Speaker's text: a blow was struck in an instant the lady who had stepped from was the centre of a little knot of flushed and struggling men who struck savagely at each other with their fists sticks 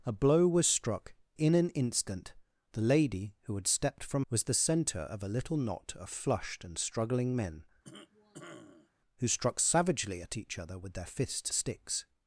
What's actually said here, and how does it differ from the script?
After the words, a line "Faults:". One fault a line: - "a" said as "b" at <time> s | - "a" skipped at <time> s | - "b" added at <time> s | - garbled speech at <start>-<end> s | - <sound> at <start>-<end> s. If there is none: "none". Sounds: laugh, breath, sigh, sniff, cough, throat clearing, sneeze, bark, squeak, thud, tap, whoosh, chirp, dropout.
a blow was struck in an instant the lady who had stepped from was the centre of a little knot of flushed and struggling men who struck savagely at each other with their fists sticks
Faults:
- cough at 7.8-8.9 s